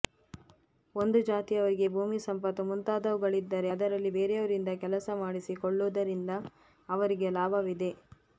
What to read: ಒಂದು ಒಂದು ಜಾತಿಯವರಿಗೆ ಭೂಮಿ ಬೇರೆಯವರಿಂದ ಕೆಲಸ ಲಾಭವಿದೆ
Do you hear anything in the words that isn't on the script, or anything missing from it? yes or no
yes